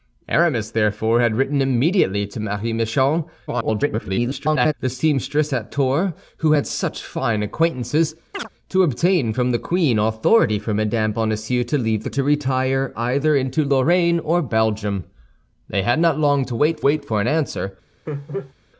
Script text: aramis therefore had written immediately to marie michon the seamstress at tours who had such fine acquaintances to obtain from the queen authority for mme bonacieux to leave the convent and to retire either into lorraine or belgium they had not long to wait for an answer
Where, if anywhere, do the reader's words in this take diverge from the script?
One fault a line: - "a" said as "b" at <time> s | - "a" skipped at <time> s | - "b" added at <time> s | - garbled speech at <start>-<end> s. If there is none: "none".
- garbled speech at 3.5-4.7 s
- "convent and" skipped at 12.1 s
- "wait" added at 16.8 s